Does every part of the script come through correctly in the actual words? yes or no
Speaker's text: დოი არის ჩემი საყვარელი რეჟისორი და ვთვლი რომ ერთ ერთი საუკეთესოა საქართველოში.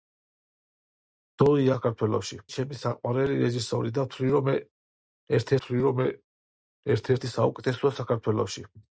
no